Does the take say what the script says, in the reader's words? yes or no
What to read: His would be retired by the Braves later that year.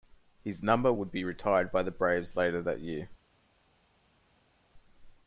no